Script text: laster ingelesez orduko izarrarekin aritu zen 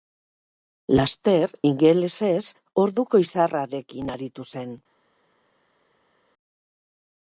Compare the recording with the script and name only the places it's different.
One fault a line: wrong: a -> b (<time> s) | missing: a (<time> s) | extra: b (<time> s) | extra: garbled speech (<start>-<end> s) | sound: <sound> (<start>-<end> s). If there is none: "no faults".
no faults